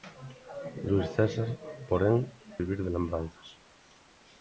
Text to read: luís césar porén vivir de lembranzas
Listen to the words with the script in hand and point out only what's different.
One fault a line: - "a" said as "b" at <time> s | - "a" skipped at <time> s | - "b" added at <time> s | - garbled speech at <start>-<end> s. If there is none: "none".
none